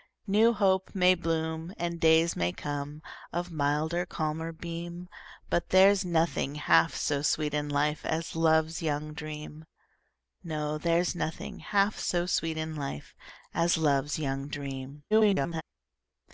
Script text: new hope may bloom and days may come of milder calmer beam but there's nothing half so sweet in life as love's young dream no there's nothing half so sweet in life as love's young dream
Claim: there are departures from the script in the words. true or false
true